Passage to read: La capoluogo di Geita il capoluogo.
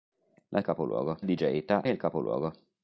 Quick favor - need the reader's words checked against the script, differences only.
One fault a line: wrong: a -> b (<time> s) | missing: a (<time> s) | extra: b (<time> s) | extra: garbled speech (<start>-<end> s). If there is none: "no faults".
no faults